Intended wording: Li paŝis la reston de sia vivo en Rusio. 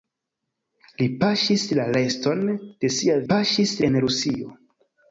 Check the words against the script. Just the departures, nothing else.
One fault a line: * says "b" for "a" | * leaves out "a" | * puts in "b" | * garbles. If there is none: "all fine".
* says "paŝis" for "vivo"